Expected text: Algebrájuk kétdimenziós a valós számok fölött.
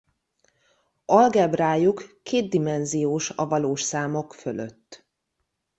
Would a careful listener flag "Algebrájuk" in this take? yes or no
no